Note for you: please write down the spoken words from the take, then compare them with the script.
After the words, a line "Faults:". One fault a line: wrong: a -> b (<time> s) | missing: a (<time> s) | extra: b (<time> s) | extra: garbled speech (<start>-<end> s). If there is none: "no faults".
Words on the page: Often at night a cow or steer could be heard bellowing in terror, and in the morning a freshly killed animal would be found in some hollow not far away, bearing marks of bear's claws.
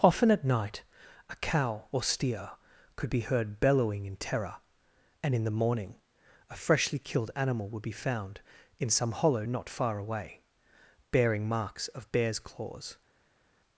Often at night a cow or steer could be heard bellowing in terror, and in the morning a freshly killed animal would be found in some hollow not far away, bearing marks of bear's claws.
Faults:
no faults